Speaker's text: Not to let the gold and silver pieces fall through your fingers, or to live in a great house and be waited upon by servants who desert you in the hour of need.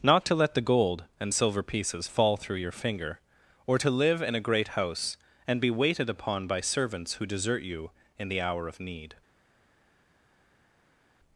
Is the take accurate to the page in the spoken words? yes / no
no